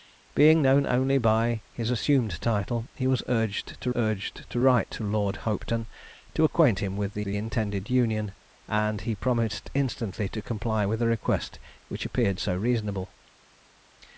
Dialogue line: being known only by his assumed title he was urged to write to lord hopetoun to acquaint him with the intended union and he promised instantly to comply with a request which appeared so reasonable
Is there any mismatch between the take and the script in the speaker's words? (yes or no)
yes